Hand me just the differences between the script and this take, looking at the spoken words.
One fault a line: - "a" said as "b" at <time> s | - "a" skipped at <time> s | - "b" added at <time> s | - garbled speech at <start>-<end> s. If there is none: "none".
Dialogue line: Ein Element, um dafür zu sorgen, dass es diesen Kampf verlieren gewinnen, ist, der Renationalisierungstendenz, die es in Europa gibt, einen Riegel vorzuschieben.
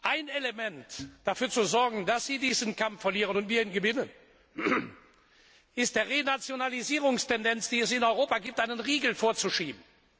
- "es" said as "sie" at 2.3 s
- "und wir ihn" added at 3.4 s